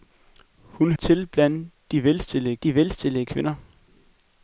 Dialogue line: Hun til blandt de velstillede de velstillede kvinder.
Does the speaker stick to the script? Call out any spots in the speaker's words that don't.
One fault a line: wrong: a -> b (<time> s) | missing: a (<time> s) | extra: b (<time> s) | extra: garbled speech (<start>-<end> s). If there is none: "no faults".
no faults